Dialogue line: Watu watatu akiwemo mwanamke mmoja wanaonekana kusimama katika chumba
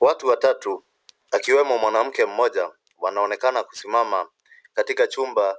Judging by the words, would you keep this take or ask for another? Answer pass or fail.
pass